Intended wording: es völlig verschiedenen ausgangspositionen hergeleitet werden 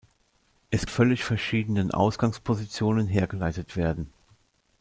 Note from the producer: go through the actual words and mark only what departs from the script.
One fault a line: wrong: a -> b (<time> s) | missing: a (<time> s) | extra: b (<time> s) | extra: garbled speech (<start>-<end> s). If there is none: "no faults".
no faults